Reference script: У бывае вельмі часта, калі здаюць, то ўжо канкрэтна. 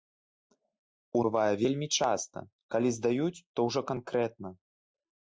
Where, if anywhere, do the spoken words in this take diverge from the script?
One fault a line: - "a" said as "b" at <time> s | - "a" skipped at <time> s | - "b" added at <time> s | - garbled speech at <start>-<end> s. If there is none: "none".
none